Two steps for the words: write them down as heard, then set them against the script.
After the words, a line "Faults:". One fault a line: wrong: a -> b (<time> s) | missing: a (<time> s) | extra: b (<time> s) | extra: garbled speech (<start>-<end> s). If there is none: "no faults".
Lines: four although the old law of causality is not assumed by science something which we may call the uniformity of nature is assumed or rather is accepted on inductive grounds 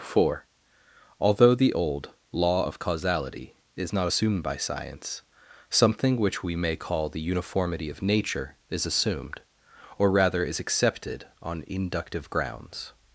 four although the old law of causality is not assumed by science something which we may call the uniformity of nature is assumed or rather is accepted on inductive grounds
Faults:
no faults